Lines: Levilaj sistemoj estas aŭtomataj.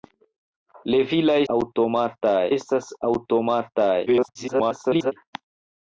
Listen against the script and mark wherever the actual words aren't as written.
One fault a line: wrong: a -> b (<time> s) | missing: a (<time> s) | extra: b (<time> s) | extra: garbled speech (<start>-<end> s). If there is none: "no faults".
wrong: sistemoj -> aŭtomataj (1.5 s)
extra: garbled speech (4.1-5.1 s)